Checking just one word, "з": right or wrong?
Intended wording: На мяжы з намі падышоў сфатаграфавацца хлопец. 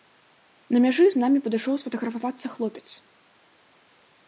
right